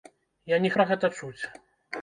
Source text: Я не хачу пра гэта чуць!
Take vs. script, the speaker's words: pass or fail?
fail